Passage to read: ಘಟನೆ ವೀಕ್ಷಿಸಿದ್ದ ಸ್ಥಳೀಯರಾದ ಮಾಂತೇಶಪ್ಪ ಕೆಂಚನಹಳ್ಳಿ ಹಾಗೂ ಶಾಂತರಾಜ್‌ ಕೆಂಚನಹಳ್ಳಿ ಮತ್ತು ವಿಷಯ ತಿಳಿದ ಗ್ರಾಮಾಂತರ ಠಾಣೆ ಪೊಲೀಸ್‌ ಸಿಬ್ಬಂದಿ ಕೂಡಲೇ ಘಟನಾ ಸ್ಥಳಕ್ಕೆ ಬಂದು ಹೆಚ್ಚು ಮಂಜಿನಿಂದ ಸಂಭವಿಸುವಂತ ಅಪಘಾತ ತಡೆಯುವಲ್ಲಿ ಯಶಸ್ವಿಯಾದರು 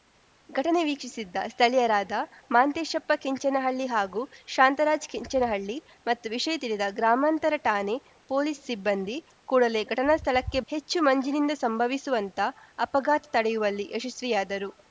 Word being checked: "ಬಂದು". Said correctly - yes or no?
no